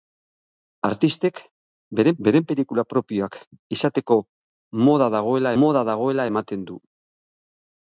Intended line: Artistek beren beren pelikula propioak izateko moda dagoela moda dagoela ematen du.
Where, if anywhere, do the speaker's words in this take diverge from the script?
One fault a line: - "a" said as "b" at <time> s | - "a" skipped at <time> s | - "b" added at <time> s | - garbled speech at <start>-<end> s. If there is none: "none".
none